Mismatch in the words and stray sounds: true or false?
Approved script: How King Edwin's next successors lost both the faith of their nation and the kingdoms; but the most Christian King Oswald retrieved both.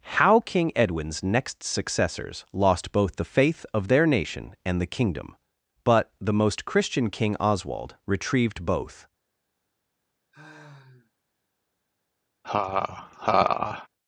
true